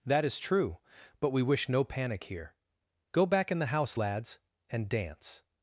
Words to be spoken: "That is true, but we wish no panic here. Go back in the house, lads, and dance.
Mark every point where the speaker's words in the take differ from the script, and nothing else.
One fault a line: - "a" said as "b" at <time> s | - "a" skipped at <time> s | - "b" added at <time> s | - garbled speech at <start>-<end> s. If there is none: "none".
none